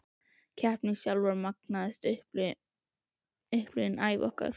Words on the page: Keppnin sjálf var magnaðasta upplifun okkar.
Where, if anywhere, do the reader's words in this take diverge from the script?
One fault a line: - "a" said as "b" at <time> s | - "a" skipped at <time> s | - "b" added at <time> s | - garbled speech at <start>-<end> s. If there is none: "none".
- "ævi" added at 4.1 s